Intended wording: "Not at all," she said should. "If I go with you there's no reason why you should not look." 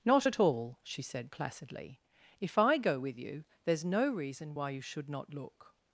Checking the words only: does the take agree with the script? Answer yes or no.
no